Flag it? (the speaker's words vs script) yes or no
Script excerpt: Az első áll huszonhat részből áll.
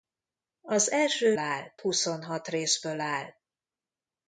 no